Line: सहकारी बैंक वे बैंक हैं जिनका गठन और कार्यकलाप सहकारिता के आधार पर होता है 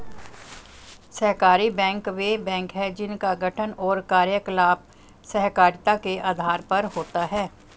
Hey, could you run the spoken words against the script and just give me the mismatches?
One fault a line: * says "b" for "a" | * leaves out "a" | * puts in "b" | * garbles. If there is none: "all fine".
all fine